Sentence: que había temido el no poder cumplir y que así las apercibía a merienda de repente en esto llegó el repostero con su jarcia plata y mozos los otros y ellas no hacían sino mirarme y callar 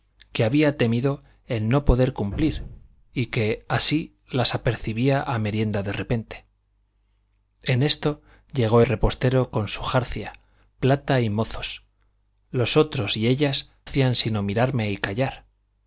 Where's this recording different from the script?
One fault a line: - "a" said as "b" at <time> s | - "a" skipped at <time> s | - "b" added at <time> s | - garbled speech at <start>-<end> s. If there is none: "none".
- "el" skipped at 8.8 s
- "no" skipped at 13.7 s